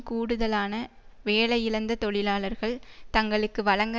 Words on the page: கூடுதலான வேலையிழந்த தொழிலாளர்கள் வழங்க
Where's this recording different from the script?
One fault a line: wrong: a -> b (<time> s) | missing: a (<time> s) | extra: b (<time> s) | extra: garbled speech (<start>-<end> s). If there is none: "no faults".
extra: தங்களுக்கு (3.1 s)